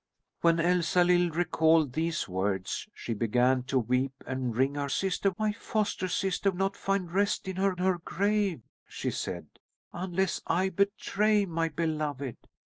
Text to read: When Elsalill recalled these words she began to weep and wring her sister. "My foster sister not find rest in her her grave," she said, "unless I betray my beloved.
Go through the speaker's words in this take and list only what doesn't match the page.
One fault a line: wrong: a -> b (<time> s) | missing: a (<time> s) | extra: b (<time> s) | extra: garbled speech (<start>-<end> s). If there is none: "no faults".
no faults